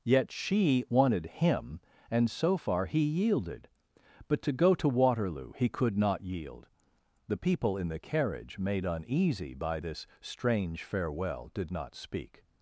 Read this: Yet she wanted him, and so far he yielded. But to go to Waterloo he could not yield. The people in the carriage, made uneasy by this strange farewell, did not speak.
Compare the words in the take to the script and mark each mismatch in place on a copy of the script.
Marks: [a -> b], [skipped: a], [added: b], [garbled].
Yet she wanted him, and so far he yielded. But to go to Waterloo he could not yield. The people in the carriage, made uneasy by this strange farewell, did not speak.